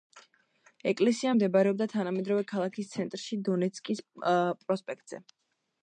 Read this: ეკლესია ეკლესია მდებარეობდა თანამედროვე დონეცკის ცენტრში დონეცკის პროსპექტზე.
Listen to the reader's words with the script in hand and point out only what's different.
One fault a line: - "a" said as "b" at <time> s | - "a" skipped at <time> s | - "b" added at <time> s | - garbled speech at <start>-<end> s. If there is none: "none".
- "ეკლესია" skipped at 1.3 s
- "დონეცკის" said as "ქალაქის" at 2.5 s